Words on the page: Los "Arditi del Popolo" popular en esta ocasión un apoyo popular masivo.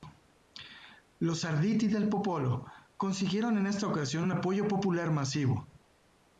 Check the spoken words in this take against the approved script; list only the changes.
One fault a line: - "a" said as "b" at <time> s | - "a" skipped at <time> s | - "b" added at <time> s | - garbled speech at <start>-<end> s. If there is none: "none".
- "popular" said as "consiguieron" at 3.0 s